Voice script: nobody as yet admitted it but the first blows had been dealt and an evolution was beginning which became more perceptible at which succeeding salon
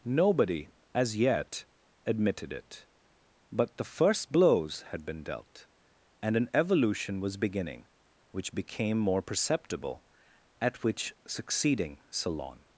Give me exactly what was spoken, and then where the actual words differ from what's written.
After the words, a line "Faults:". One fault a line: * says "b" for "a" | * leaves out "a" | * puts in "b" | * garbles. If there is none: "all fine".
nobody as yet admitted it but the first blows had been dealt and an evolution was beginning which became more perceptible at which succeeding salon
Faults:
all fine